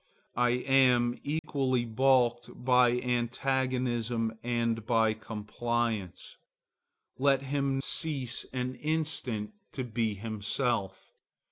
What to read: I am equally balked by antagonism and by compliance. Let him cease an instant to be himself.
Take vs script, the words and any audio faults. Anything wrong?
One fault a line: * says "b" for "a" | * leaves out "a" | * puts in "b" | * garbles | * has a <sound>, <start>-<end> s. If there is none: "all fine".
* has a dropout, 1.4-1.4 s